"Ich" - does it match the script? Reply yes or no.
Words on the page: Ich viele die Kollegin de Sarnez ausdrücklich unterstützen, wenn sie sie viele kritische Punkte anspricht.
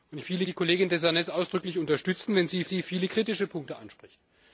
yes